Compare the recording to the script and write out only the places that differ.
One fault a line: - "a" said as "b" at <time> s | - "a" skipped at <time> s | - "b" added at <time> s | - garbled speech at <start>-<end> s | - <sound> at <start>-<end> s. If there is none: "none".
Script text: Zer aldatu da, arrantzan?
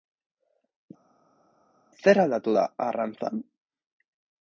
none